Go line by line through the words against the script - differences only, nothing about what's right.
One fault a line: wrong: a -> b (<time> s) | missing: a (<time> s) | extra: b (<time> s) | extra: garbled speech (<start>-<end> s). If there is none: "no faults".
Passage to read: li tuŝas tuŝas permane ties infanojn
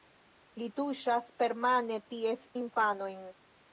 missing: tuŝas (1.3 s)